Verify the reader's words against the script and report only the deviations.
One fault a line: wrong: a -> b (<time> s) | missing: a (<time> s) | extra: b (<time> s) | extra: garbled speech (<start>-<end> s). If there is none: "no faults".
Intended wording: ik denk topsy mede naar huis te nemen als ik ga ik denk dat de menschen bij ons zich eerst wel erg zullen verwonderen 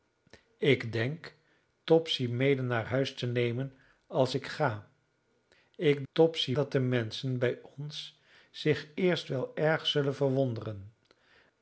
wrong: denk -> topsy (6.1 s)